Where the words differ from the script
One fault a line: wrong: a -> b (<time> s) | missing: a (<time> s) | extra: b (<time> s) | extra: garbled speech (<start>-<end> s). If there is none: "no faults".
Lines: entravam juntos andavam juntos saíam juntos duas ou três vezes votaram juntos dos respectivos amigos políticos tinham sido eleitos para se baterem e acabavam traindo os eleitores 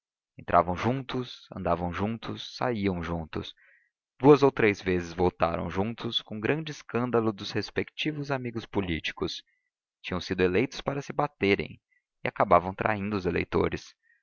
extra: com grande escândalo (6.2 s)